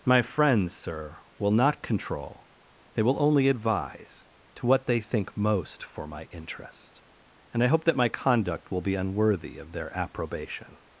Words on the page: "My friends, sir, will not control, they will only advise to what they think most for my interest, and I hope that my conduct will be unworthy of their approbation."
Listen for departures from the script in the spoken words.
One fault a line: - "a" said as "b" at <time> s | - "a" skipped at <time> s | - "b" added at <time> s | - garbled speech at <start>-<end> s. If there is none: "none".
none